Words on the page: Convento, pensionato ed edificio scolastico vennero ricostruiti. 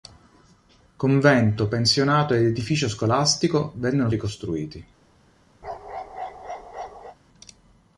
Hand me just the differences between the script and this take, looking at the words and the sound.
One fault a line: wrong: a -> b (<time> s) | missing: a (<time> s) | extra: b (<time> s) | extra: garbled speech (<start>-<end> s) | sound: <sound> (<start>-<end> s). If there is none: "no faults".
sound: bark (5.6-7.2 s)